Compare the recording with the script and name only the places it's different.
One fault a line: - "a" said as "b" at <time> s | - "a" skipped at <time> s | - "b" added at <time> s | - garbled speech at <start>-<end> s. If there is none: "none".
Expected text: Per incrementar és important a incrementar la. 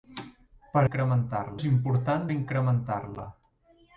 none